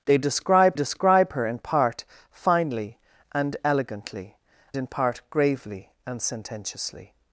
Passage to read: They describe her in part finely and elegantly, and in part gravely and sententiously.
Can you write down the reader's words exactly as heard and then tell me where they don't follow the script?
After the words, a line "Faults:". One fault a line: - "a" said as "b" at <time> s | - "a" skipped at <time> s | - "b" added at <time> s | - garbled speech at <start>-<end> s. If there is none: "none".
They describe describe her in part finely and elegantly, in part gravely and sententiously.
Faults:
- "describe" added at 0.7 s
- "and" skipped at 4.4 s